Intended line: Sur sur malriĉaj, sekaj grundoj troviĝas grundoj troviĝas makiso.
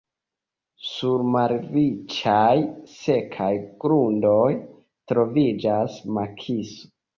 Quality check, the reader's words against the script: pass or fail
fail